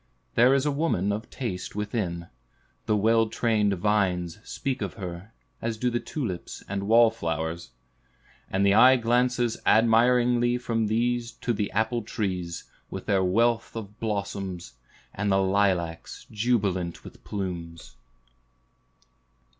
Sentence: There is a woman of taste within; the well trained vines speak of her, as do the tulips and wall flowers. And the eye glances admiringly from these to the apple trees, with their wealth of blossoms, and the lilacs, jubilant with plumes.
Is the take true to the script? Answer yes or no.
yes